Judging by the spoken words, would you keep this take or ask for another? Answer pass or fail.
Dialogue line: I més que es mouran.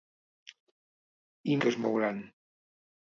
fail